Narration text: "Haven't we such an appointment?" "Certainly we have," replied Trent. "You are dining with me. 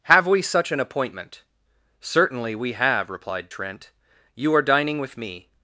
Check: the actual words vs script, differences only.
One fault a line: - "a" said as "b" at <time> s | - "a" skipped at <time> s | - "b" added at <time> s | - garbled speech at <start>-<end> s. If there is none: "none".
- "Haven't" said as "Have" at 0.1 s